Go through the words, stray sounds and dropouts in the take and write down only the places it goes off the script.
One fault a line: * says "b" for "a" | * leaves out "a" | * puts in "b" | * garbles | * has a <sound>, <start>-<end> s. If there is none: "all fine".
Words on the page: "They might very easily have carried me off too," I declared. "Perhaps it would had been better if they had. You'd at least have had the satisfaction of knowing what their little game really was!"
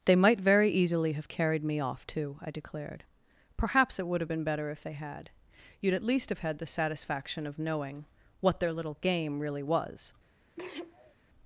* says "have" for "had"
* has a sneeze, 10.6-11.1 s